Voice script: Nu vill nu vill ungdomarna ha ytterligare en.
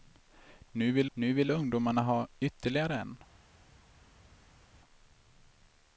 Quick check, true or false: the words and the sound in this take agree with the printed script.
true